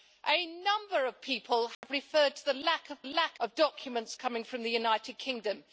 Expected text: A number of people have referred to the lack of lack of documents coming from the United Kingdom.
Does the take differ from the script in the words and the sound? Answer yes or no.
yes